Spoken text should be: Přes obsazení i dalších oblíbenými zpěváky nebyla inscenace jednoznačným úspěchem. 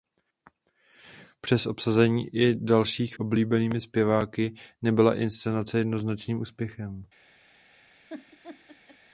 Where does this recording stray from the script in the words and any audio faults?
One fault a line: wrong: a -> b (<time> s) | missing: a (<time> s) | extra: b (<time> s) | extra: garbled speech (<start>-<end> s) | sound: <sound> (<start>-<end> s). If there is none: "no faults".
sound: laugh (8.1-9.0 s)